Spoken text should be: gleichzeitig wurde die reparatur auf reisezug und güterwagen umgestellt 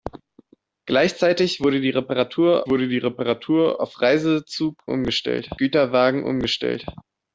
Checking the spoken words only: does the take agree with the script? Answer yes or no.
no